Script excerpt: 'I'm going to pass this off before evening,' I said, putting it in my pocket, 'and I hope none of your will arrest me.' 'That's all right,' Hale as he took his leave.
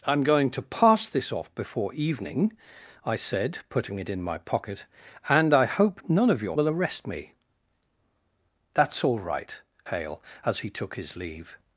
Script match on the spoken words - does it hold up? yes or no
yes